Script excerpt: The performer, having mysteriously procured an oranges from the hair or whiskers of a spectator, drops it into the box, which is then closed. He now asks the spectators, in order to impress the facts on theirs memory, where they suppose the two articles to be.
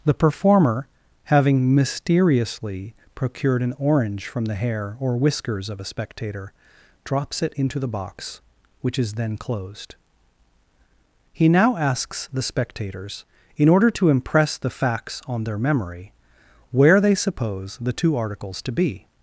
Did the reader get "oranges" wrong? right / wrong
wrong